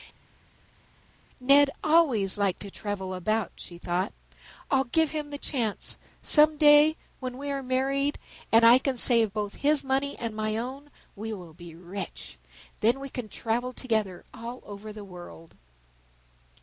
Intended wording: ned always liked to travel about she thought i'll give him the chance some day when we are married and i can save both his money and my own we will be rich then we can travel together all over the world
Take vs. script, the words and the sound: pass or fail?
pass